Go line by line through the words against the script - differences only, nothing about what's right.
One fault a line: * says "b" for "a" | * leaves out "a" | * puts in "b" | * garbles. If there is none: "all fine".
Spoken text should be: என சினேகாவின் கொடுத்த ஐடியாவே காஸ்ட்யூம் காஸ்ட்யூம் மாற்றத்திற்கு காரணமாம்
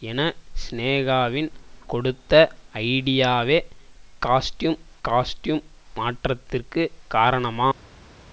all fine